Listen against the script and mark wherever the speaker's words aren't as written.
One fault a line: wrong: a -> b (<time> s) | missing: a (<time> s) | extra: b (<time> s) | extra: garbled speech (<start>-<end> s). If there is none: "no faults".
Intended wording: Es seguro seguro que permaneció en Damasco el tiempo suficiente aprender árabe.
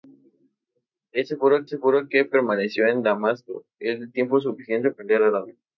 no faults